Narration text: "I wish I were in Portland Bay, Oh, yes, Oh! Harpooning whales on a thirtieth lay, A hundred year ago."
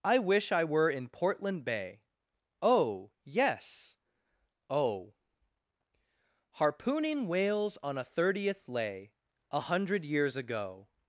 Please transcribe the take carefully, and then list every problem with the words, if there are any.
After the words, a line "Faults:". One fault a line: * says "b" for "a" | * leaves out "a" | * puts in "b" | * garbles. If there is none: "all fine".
"I wish I were in Portland Bay, Oh, yes, Oh! Harpooning whales on a thirtieth lay, A hundred years ago."
Faults:
* says "years" for "year"